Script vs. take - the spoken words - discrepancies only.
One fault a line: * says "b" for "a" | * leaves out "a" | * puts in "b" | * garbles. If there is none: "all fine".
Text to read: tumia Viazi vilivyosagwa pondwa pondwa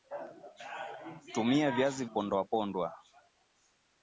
* leaves out "vilivyosagwa"